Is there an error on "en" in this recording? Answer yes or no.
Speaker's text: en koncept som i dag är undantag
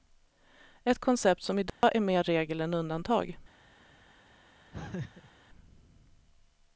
yes